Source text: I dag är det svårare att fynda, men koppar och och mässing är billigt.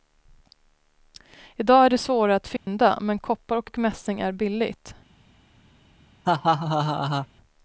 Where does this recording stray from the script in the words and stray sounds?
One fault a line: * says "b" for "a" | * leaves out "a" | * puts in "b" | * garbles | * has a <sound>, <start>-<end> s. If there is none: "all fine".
* has a dropout, 2.6-2.7 s
* has a laugh, 6.2-7.3 s